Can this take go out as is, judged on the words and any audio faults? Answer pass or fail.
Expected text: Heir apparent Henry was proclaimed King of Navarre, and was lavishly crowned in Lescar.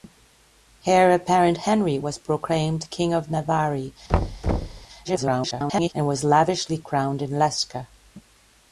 fail